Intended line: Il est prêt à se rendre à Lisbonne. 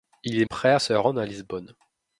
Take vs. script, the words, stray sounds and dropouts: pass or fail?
pass